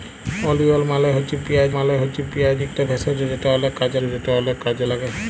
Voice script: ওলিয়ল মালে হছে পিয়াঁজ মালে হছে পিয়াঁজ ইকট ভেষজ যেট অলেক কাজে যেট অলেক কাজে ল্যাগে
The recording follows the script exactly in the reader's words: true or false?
true